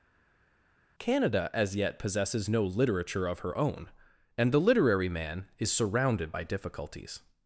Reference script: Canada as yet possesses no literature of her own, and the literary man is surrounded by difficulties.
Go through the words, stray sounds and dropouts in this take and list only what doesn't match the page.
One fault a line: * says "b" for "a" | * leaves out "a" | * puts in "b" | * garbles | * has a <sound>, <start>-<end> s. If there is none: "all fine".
all fine